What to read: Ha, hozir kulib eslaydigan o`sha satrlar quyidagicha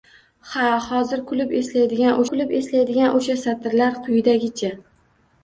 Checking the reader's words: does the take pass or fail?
fail